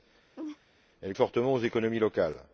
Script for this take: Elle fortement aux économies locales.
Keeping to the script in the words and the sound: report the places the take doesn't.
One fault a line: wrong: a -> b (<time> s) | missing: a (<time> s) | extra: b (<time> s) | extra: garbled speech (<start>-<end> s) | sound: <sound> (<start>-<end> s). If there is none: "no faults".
sound: laugh (0.4-0.6 s)